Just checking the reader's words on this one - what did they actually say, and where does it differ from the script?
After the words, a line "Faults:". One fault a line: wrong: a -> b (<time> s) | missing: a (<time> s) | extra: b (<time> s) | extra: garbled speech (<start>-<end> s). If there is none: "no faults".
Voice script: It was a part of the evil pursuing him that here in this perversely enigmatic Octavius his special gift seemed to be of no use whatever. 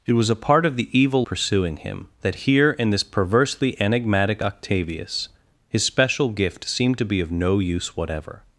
It was a part of the evil pursuing him that here in this perversely enigmatic Octavius his special gift seemed to be of no use whatever.
Faults:
no faults